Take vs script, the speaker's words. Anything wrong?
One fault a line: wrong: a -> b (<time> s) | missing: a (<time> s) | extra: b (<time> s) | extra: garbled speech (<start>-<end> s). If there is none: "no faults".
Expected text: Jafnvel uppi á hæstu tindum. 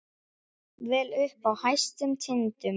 no faults